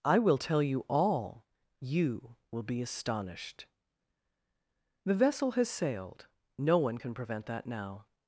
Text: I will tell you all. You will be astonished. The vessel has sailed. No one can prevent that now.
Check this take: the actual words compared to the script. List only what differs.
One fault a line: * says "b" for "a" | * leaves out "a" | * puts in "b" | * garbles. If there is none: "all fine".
all fine